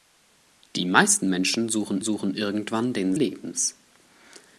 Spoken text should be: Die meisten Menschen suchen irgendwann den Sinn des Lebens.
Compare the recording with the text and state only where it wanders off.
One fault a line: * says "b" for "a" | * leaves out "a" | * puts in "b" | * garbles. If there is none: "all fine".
* puts in "suchen"
* leaves out "Sinn des"